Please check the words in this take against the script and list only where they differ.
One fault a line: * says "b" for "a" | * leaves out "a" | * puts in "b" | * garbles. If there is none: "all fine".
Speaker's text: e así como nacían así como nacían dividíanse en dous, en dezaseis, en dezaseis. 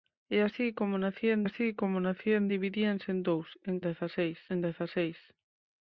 all fine